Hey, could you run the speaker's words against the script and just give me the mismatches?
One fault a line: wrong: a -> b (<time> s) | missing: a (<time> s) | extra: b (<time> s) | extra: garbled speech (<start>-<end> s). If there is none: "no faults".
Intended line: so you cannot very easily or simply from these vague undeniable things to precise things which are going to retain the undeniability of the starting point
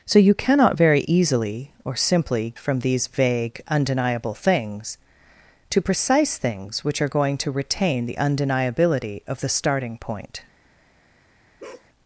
no faults